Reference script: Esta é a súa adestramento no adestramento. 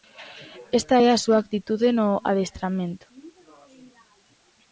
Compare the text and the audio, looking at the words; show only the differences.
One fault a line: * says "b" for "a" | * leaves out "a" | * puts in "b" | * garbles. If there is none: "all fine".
* says "actitude" for "adestramento"